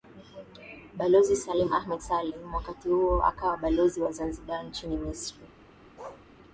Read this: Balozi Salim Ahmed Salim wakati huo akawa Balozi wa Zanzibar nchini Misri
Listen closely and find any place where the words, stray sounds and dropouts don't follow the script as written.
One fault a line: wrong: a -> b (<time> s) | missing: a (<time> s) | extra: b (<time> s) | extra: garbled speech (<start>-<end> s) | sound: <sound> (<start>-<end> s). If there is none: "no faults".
sound: bark (6.0-6.3 s)